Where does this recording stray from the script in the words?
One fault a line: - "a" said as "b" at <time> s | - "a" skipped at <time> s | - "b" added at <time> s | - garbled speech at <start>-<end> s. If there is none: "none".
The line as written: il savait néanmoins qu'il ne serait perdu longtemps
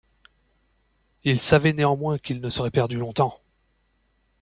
none